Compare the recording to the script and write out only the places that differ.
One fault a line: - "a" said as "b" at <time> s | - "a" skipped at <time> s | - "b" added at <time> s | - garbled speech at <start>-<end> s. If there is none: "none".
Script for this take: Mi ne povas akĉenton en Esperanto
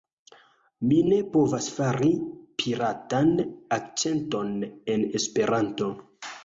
- "fari piratan" added at 1.8 s